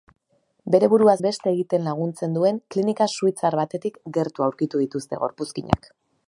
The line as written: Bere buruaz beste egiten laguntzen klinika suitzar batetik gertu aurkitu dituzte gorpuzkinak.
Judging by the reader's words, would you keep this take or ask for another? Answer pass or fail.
fail